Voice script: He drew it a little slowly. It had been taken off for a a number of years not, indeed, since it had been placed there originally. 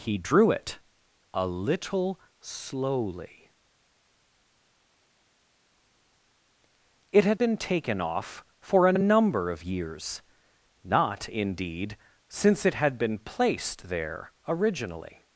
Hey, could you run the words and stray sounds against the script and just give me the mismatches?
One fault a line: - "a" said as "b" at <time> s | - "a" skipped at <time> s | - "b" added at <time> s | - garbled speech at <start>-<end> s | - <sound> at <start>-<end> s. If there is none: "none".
none